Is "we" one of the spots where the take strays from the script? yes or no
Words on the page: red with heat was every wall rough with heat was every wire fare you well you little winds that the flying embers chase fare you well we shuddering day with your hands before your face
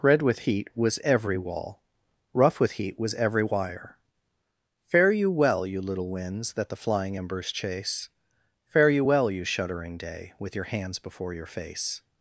yes